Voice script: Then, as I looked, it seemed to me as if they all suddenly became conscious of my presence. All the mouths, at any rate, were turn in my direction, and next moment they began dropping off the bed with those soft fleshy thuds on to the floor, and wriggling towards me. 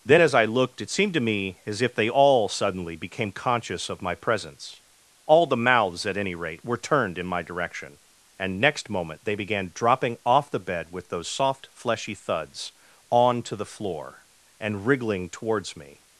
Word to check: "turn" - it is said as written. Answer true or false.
false